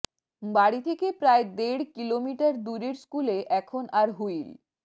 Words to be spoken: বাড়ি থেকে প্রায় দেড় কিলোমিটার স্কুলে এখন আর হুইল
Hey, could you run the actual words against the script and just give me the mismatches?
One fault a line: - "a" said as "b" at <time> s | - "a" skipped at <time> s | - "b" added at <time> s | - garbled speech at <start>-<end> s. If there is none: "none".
- "দূরের" added at 2.6 s